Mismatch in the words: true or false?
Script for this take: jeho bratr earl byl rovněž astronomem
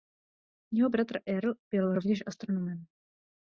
false